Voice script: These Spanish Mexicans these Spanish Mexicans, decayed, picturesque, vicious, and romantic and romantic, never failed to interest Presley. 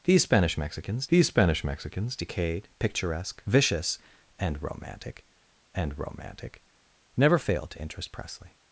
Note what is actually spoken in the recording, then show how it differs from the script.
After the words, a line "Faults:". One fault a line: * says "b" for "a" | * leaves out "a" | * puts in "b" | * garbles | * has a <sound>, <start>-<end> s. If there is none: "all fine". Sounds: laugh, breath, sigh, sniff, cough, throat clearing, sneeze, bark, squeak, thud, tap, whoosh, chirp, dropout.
These Spanish Mexicans these Spanish Mexicans, decayed, picturesque, vicious, and romantic and romantic, never failed to interest Presley.
Faults:
all fine